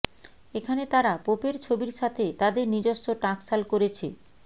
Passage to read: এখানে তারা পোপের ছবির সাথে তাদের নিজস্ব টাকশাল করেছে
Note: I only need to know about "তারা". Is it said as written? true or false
true